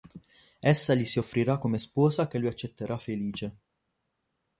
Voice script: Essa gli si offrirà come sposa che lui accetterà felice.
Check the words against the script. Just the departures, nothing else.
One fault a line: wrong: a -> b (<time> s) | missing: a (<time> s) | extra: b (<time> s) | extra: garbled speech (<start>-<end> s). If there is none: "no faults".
no faults